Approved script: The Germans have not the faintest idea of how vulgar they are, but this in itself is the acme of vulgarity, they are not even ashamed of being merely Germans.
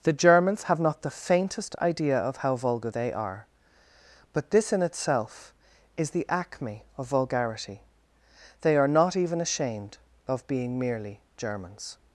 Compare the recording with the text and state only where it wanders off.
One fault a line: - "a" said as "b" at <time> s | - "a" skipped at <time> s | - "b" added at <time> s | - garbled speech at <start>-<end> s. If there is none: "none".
none